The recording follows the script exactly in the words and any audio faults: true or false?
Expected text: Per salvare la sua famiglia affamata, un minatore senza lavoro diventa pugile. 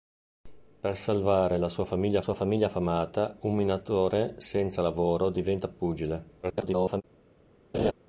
false